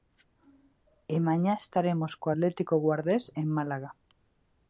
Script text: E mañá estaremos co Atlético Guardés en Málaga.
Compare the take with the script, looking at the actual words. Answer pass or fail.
pass